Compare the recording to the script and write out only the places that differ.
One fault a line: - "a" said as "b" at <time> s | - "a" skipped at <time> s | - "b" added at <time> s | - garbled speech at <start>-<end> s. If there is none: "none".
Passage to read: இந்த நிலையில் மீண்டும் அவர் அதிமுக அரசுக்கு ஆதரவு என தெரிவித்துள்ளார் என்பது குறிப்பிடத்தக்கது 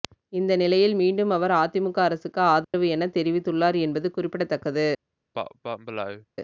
none